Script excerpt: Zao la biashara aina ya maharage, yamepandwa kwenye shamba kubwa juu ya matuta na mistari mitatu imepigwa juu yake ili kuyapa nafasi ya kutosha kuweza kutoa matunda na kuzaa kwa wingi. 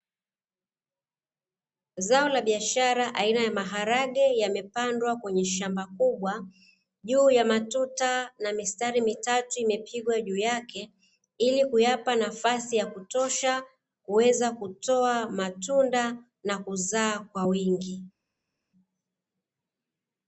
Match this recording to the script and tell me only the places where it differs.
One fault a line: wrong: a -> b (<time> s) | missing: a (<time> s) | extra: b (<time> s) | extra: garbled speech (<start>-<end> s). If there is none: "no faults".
no faults